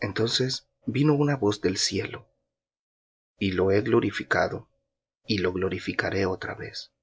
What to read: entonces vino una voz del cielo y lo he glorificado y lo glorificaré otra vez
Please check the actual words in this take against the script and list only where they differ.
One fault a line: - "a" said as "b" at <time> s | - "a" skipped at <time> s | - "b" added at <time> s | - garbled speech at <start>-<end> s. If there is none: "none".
none